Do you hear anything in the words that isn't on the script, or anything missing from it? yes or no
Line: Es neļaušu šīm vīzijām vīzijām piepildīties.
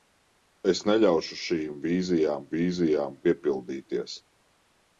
no